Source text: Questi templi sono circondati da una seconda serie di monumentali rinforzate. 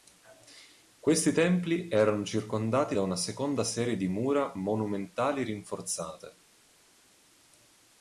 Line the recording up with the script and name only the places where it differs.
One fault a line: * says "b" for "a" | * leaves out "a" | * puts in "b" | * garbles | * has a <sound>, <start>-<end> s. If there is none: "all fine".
* says "erano" for "sono"
* puts in "mura"